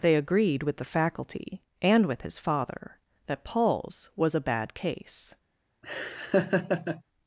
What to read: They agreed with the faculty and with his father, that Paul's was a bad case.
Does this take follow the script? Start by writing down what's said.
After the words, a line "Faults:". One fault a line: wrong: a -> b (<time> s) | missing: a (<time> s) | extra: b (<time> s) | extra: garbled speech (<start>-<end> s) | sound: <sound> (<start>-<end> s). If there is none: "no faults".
They agreed with the faculty and with his father, that Paul's was a bad case.
Faults:
sound: laugh (5.8-7.0 s)